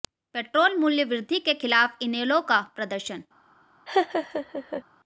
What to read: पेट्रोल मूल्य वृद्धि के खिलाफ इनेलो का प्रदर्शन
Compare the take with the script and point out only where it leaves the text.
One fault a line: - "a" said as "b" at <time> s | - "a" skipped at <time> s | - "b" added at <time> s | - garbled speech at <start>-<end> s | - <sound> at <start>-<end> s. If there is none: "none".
- laugh at 3.9-4.8 s